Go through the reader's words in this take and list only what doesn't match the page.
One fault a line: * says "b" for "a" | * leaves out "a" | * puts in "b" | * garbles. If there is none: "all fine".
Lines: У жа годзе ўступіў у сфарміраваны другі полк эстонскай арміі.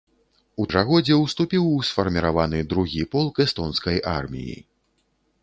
all fine